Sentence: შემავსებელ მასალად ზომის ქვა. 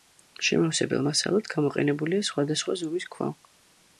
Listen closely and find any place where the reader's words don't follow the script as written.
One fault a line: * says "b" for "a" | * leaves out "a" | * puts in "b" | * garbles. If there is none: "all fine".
* puts in "გამოყენებულია სხვადასხვა"